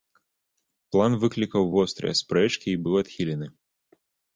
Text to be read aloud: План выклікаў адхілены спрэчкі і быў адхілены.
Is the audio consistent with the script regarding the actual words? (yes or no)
no